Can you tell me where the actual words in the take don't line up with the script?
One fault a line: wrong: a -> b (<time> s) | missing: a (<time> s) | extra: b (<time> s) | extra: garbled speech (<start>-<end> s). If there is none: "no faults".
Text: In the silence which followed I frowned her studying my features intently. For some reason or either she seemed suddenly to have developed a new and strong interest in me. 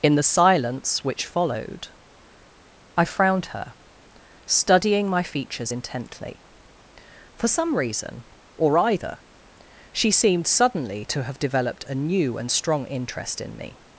no faults